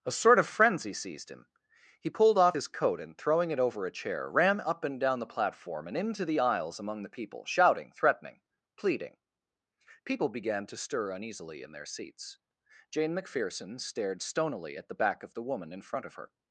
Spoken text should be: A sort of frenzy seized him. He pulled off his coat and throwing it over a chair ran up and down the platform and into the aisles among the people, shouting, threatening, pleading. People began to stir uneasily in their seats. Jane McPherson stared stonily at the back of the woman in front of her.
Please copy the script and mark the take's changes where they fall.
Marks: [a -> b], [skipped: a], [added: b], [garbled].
A sort of frenzy seized him. He pulled off his coat and throwing it over a chair ran up and down the platform and into the aisles among the people, shouting, threatening, pleading. People began to stir uneasily in their seats. Jane McPherson stared stonily at the back of the woman in front of her.